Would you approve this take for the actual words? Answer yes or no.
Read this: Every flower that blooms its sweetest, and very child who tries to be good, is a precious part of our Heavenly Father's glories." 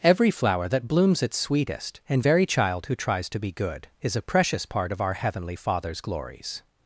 yes